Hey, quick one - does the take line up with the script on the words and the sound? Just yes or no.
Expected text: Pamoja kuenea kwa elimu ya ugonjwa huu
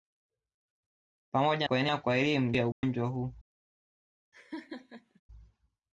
no